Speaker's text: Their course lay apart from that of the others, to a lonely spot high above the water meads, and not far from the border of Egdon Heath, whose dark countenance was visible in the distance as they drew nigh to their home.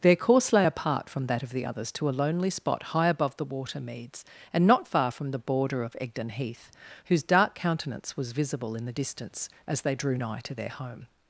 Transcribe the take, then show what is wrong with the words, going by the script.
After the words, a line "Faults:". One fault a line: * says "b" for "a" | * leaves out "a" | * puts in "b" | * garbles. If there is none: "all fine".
Their course lay apart from that of the others, to a lonely spot high above the water meads, and not far from the border of Egdon Heath, whose dark countenance was visible in the distance as they drew nigh to their home.
Faults:
all fine